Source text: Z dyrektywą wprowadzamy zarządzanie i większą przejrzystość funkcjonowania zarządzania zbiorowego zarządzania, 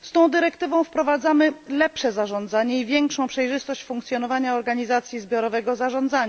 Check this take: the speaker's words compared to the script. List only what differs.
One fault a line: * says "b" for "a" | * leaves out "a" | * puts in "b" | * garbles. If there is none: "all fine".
* puts in "tą"
* puts in "lepsze"
* says "organizacji" for "zarządzania"